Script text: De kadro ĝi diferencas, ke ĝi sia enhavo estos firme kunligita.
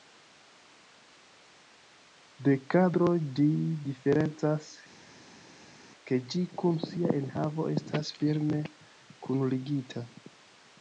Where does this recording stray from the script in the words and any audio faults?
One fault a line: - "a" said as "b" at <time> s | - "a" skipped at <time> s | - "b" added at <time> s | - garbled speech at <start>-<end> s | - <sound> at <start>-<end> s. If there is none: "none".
- "kun" added at 6.6 s
- "estos" said as "estas" at 7.8 s